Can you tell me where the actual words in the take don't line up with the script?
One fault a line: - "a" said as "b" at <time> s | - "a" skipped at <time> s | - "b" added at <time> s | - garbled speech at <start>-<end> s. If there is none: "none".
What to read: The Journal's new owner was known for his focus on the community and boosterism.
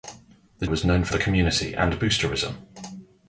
- "Journal's new owner" skipped at 0.7 s
- "his focus on" skipped at 1.1 s